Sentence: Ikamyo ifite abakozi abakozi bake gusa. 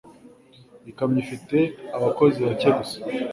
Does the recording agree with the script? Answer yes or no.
no